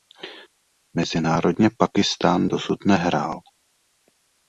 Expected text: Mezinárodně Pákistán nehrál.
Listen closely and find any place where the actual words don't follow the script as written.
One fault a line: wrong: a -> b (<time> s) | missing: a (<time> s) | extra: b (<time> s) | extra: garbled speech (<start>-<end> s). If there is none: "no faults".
extra: dosud (2.5 s)